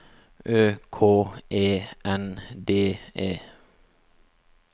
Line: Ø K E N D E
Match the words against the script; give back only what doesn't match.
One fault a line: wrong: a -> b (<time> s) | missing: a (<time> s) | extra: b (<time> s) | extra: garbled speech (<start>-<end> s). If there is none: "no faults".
no faults